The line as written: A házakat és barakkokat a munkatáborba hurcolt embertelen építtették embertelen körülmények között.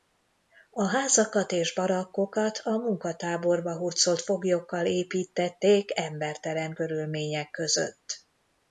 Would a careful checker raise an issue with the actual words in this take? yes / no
yes